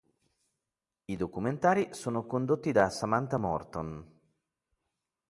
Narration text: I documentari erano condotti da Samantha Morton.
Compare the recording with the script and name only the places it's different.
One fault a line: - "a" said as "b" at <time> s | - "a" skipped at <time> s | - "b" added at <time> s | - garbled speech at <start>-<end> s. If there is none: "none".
- "erano" said as "sono" at 1.9 s